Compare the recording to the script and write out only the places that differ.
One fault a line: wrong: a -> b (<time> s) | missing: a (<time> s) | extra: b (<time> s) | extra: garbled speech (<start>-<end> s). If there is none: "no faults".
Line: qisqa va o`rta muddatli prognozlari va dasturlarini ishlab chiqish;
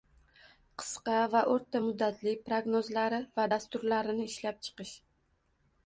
no faults